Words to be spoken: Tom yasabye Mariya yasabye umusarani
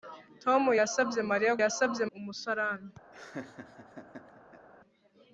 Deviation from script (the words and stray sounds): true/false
true